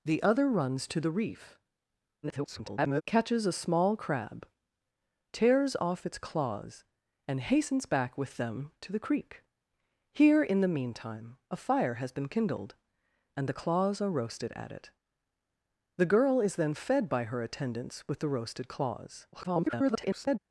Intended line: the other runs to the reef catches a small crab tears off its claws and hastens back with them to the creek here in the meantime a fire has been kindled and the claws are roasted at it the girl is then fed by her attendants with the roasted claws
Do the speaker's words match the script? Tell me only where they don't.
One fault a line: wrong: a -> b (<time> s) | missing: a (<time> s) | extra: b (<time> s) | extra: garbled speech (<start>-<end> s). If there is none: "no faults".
extra: garbled speech (2.2-3.0 s)
extra: garbled speech (19.3-20.4 s)